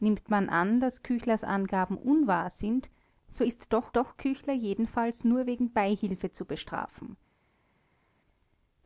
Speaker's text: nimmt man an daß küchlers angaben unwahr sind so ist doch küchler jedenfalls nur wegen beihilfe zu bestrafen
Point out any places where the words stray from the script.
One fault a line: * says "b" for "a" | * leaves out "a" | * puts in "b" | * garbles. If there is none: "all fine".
* puts in "doch"